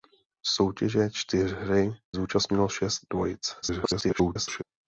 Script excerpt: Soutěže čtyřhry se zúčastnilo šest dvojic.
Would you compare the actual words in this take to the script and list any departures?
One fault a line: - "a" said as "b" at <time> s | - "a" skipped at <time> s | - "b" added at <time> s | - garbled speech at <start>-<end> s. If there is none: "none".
- "se" skipped at 1.9 s
- garbled speech at 3.6-4.6 s